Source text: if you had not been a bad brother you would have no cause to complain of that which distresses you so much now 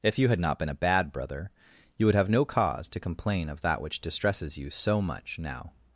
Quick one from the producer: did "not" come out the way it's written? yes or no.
yes